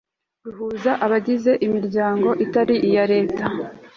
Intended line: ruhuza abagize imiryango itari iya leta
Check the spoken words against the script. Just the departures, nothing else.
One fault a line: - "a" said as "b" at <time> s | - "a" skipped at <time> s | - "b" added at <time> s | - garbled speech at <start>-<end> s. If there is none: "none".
none